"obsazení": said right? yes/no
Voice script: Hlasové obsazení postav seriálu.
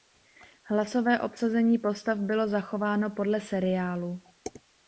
yes